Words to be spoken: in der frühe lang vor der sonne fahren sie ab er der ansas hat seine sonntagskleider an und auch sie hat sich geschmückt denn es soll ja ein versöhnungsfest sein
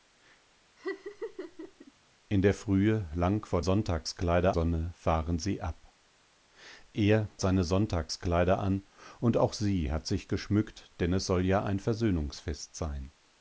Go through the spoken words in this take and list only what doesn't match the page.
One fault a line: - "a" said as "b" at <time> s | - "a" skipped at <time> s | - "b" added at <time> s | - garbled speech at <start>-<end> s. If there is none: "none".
- "der" said as "sonntagskleider" at 3.6 s
- "der ansas hat" skipped at 7.3 s